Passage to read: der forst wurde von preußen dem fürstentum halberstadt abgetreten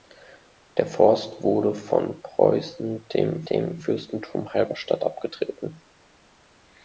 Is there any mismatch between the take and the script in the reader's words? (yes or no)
yes